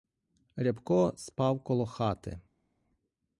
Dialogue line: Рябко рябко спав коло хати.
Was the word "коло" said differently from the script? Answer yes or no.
no